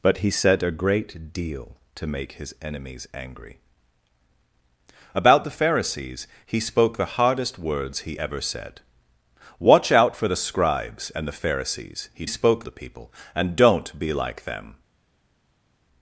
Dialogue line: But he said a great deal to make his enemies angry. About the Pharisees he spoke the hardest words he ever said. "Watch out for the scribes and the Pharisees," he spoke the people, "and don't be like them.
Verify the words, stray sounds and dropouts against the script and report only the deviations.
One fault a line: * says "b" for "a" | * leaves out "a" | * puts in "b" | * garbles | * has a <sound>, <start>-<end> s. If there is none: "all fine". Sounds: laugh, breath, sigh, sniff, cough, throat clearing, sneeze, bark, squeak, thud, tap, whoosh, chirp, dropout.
all fine